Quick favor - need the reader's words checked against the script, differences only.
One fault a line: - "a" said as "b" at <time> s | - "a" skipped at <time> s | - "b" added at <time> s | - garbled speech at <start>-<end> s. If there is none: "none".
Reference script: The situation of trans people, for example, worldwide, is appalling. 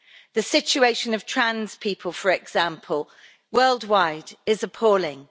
none